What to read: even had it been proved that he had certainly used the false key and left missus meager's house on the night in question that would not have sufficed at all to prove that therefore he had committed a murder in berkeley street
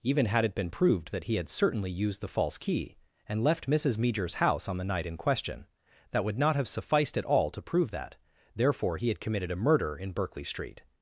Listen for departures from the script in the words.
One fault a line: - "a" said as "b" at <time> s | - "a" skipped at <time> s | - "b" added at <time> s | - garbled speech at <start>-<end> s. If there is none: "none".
none